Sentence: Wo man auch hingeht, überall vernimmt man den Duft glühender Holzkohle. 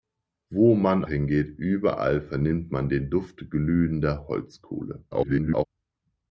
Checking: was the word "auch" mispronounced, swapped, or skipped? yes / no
yes